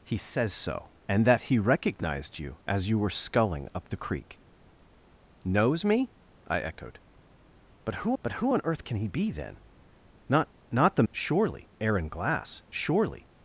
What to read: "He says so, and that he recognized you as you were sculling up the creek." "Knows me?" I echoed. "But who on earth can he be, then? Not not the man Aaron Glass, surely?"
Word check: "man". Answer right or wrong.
wrong